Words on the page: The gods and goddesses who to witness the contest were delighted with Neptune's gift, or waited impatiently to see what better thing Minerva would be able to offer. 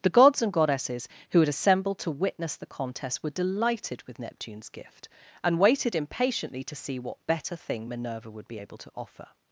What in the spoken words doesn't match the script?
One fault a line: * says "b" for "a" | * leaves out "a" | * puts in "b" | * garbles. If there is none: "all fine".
* puts in "had assembled"
* says "and" for "or"